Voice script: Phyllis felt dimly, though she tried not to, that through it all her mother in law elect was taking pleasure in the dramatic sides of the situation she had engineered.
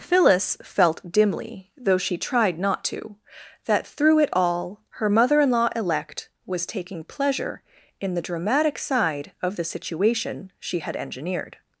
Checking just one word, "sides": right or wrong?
wrong